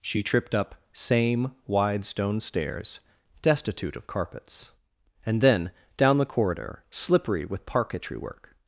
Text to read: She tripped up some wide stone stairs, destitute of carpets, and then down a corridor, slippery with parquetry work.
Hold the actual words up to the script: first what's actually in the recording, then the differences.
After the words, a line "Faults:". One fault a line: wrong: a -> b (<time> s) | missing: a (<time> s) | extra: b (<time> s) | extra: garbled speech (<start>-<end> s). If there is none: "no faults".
She tripped up same wide stone stairs, destitute of carpets, and then down the corridor, slippery with parquetry work.
Faults:
wrong: some -> same (0.9 s)
wrong: a -> the (6.2 s)